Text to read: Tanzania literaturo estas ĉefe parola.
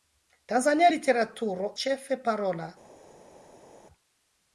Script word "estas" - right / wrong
wrong